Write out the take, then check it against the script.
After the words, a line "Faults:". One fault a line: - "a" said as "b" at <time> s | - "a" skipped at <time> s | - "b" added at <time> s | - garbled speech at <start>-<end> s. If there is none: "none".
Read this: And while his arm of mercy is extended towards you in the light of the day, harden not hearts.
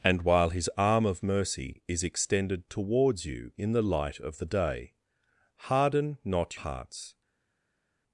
And while his arm of mercy is extended towards you in the light of the day, harden not hearts.
Faults:
none